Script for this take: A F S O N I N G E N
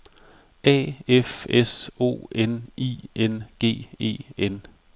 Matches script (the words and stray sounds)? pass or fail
pass